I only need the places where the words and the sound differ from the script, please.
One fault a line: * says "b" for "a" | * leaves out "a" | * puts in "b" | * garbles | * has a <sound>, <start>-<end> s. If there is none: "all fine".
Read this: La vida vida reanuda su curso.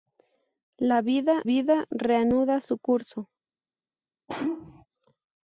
* has a sneeze, 4.3-4.9 s